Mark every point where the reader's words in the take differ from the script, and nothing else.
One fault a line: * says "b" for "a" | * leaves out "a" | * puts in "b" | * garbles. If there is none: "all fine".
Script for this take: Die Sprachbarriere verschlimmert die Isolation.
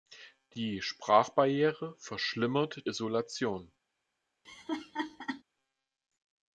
* leaves out "die"